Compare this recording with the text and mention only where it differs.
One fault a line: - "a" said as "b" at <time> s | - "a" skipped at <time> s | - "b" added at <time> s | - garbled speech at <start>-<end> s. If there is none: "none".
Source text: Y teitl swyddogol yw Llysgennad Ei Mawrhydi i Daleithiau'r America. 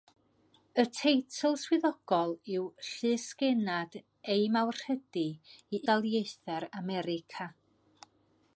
none